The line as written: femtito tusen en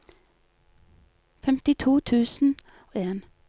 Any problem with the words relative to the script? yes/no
no